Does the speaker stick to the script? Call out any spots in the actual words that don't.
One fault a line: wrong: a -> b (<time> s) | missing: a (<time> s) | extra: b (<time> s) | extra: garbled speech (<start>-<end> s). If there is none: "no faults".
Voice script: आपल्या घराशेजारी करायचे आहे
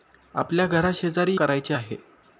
no faults